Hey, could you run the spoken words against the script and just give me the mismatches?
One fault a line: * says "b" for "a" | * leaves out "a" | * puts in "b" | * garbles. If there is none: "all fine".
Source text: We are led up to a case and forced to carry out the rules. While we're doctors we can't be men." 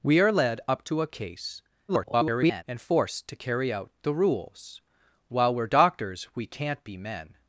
* garbles